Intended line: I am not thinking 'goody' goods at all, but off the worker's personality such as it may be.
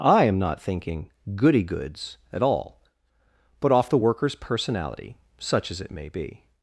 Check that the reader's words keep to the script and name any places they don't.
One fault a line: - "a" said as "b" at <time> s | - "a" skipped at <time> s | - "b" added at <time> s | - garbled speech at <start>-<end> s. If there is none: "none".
none